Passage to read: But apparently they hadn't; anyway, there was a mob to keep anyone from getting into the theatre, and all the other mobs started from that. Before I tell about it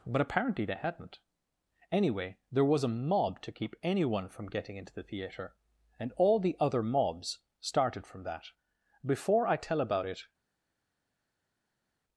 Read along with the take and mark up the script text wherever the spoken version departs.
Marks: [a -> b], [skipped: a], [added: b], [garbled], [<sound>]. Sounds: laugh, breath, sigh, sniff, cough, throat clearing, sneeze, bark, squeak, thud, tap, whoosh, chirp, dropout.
But apparently they hadn't; anyway, there was a mob to keep anyone from getting into the theatre, and all the other mobs started from that. Before I tell about it